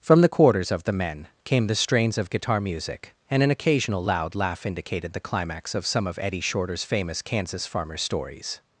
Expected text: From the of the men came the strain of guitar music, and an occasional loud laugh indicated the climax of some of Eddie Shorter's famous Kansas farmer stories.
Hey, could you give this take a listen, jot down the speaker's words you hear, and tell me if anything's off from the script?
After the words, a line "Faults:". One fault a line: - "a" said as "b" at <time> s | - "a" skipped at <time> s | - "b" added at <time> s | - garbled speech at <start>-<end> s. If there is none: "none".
From the quarters of the men came the strains of guitar music, and an occasional loud laugh indicated the climax of some of Eddie Shorter's famous Kansas farmer stories.
Faults:
- "quarters" added at 0.3 s
- "strain" said as "strains" at 1.8 s